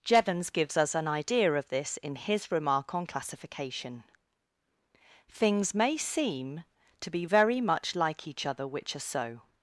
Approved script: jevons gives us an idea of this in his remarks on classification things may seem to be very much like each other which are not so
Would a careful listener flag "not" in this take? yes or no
yes